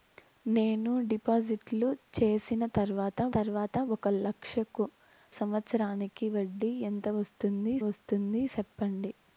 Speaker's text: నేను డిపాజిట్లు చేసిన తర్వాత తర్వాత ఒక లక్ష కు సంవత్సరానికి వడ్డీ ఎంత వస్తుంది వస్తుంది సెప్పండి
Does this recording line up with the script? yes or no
yes